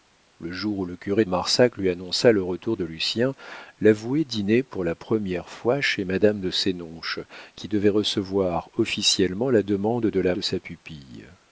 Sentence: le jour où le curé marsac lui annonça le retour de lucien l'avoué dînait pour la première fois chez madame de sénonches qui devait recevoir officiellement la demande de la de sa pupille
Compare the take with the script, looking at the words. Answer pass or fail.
pass